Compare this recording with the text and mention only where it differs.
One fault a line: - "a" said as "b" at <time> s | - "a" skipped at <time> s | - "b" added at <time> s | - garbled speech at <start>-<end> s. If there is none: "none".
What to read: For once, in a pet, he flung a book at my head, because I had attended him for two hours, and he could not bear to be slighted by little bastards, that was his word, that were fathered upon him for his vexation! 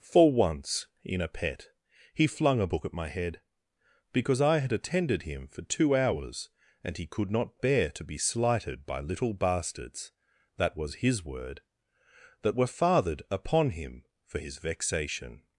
none